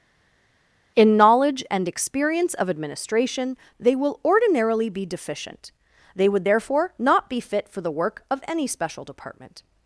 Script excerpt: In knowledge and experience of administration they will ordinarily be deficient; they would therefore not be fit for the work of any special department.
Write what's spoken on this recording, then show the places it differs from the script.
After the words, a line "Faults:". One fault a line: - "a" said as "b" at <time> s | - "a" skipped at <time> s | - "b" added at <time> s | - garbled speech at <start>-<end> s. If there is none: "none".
In knowledge and experience of administration they will ordinarily be deficient; they would therefore not be fit for the work of any special department.
Faults:
none